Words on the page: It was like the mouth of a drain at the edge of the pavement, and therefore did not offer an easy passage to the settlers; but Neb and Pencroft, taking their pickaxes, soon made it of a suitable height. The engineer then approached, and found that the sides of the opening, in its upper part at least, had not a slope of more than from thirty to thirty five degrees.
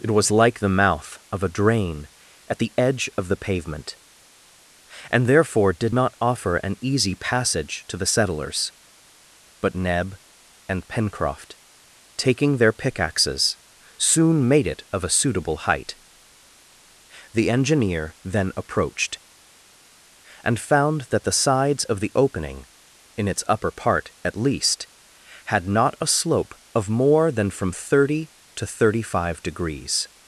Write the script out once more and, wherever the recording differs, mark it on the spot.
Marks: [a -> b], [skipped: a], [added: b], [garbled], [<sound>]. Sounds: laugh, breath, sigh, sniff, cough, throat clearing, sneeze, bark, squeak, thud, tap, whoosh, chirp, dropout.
It was like the mouth of a drain at the edge of the pavement, and therefore did not offer an easy passage to the settlers; but Neb and Pencroft, taking their pickaxes, soon made it of a suitable height. The engineer then approached, and found that the sides of the opening, in its upper part at least, had not a slope of more than from thirty to thirty five degrees.